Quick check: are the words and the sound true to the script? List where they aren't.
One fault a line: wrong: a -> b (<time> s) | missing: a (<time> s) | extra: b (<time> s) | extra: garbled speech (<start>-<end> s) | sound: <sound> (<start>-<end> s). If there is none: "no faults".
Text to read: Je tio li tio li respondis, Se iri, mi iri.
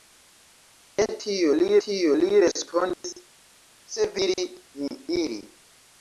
sound: dropout (2.9-3.0 s)